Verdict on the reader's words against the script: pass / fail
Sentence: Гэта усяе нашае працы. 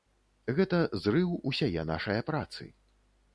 fail